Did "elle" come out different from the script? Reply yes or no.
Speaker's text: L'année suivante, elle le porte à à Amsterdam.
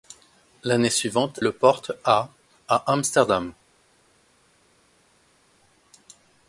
yes